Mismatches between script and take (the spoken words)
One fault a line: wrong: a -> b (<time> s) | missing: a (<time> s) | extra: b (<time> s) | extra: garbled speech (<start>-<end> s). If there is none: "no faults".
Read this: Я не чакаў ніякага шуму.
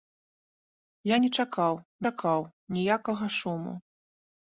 extra: чакаў (2.1 s)